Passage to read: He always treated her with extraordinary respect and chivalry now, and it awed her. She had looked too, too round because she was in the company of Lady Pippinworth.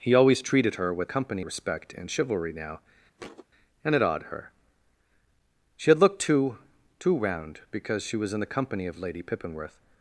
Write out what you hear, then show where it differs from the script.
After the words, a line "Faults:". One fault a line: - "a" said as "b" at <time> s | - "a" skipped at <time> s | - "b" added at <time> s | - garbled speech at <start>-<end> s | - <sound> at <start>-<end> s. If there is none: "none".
He always treated her with company respect and chivalry now, and it awed her. She had looked too, too round because she was in the company of Lady Pippinworth.
Faults:
- "extraordinary" said as "company" at 1.0 s
- thud at 3.2-3.5 s